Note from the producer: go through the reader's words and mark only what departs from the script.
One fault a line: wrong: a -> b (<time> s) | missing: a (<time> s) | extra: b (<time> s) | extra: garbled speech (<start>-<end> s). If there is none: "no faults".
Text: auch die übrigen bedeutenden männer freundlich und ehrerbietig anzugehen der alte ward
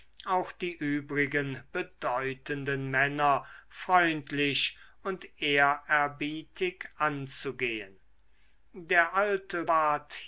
no faults